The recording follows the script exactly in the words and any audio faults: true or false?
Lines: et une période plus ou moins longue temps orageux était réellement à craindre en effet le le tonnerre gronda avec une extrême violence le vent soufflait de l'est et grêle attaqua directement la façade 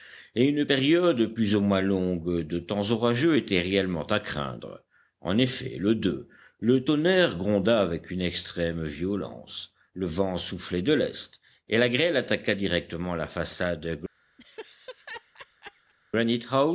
false